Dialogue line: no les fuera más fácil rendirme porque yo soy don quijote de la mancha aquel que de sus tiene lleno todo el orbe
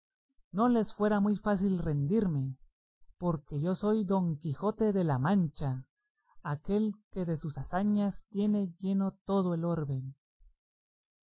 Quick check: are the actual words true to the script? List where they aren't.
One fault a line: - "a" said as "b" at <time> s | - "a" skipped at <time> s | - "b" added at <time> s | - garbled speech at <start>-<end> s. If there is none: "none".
- "más" said as "muy" at 1.2 s
- "hazañas" added at 7.6 s